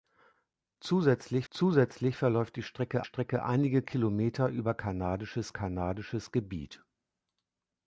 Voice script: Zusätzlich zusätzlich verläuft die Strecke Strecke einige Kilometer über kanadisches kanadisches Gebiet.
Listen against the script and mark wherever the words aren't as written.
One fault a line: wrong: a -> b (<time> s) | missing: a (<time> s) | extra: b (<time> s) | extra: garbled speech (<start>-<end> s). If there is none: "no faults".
no faults